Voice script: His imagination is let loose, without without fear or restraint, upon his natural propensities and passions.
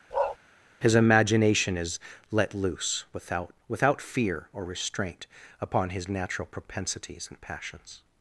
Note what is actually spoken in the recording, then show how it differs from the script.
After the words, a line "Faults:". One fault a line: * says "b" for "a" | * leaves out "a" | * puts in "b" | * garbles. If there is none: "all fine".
His imagination is let loose, without without fear or restraint, upon his natural propensities and passions.
Faults:
all fine